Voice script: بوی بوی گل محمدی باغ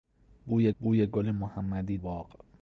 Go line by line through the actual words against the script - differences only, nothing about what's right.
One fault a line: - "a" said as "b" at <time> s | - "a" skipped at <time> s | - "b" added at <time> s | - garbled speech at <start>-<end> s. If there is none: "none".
none